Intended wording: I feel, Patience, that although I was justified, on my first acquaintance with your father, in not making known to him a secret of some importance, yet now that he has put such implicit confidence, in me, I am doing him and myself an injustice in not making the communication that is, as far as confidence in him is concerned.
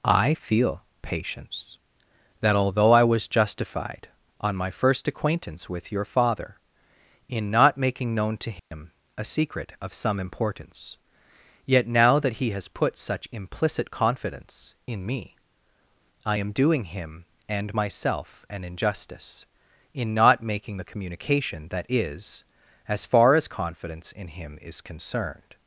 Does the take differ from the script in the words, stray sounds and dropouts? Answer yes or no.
yes